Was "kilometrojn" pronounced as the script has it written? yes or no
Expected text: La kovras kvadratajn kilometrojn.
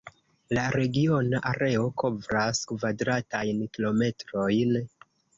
yes